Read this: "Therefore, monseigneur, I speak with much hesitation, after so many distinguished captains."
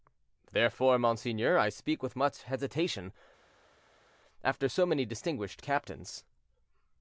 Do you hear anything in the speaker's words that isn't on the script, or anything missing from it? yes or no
no